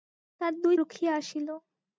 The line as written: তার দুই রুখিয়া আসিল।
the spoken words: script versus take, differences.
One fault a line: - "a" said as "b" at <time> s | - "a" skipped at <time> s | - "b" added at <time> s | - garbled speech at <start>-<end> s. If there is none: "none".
none